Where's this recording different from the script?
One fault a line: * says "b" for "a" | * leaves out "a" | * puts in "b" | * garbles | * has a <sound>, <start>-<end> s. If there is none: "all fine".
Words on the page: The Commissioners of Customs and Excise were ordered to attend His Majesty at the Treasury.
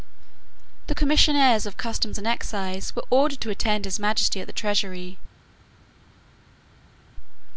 all fine